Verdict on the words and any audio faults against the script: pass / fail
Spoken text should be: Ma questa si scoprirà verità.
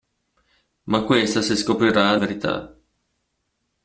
pass